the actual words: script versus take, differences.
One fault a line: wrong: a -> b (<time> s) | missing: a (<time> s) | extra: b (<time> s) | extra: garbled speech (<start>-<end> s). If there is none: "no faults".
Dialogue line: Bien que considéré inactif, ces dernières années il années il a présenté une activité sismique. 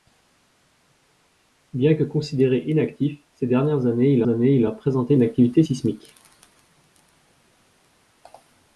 no faults